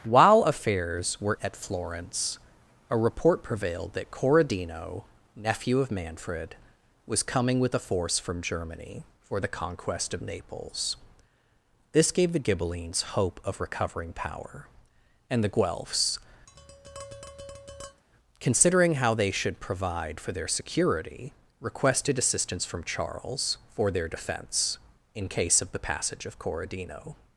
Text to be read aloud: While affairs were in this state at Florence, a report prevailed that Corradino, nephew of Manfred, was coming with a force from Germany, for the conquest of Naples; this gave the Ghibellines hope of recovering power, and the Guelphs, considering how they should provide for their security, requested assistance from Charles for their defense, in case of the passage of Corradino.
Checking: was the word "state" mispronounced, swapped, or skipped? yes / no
yes